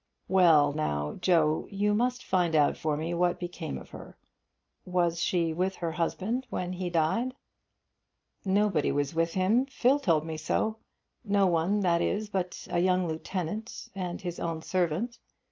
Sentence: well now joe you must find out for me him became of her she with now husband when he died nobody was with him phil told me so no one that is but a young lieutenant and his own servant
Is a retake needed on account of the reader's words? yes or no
yes